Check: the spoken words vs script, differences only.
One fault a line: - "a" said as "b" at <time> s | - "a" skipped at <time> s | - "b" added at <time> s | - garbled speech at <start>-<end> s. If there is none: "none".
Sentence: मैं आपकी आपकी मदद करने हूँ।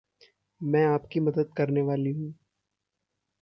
- "आपकी" skipped at 1.2 s
- "वाली" added at 1.8 s